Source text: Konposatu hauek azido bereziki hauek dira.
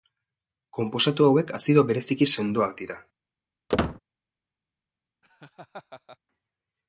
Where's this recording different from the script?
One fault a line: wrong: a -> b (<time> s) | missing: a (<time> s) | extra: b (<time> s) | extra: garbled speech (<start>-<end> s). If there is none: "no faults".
wrong: hauek -> sendoak (2.4 s)